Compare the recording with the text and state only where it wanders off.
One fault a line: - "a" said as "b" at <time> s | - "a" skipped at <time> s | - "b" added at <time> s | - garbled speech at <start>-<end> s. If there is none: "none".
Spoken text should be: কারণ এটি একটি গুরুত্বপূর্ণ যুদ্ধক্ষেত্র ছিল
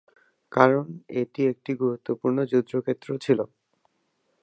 none